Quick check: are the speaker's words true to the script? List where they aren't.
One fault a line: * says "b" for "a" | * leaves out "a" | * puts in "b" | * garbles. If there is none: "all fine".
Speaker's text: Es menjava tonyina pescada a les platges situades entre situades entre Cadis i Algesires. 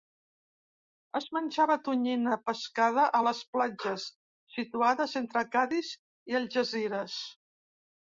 * leaves out "situades entre"